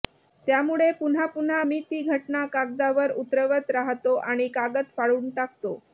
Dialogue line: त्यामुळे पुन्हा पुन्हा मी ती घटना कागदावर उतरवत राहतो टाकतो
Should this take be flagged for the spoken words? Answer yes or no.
yes